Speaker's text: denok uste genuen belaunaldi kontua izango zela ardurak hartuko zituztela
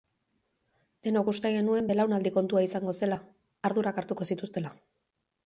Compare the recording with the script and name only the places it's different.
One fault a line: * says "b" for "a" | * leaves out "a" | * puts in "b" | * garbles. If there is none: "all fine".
all fine